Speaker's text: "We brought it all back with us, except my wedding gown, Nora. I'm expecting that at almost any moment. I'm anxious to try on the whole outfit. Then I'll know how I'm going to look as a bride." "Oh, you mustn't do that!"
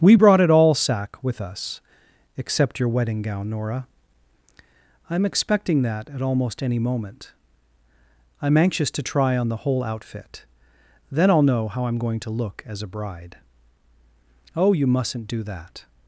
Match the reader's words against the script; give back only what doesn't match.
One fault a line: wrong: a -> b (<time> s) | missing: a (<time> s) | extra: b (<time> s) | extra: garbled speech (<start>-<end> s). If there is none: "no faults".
wrong: back -> sack (0.7 s)
wrong: my -> your (2.8 s)